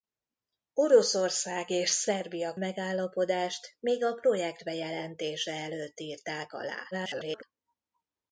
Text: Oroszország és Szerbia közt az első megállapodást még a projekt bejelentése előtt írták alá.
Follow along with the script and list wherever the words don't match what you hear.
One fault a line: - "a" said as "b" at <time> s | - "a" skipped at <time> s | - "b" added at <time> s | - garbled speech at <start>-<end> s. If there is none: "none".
- "közt az első" skipped at 2.5 s
- garbled speech at 6.9-7.4 s